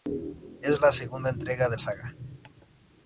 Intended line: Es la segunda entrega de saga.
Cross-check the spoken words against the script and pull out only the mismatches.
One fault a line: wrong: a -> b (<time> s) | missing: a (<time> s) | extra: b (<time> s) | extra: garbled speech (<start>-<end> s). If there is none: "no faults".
no faults